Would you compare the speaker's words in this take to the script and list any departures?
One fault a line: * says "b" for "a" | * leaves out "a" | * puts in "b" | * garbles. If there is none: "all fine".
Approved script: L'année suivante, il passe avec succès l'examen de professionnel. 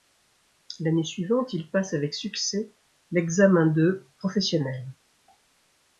all fine